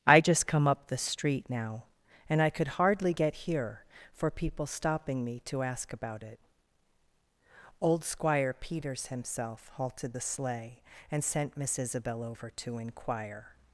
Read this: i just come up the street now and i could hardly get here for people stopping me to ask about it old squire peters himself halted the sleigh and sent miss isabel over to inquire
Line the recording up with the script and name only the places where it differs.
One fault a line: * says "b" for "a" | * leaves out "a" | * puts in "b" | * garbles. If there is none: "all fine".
all fine